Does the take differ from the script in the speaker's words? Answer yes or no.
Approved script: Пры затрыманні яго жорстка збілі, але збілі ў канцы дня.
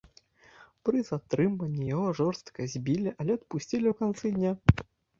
yes